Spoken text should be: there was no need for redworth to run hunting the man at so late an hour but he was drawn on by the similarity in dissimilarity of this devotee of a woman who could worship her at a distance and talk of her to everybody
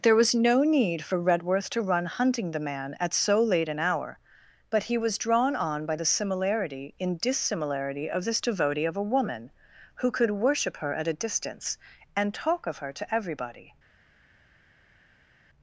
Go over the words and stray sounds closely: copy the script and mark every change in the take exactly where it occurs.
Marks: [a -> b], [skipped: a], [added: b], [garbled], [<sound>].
there was no need for redworth to run hunting the man at so late an hour but he was drawn on by the similarity in dissimilarity of this devotee of a woman who could worship her at a distance and talk of her to everybody